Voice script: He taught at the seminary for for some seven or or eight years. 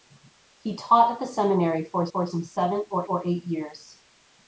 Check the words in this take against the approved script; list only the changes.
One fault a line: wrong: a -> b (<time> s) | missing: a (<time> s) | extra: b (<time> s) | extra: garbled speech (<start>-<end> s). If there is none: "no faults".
no faults